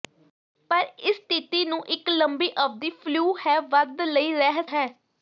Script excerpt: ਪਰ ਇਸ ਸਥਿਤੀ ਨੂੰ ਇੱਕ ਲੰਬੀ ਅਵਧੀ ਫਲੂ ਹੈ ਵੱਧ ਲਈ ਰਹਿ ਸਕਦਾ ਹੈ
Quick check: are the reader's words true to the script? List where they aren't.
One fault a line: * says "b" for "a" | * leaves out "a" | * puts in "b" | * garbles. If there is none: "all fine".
* leaves out "ਸਕਦਾ"